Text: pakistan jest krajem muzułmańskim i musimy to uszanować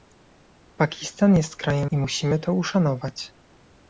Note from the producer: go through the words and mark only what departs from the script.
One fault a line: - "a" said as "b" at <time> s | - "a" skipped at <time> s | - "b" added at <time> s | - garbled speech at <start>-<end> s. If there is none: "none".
- "muzułmańskim" skipped at 1.9 s